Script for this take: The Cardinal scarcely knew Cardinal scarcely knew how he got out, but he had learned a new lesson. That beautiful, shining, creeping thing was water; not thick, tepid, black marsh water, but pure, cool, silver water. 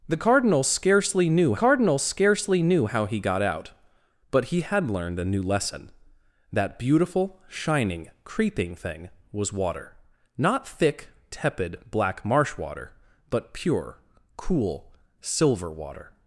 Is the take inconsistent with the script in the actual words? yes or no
no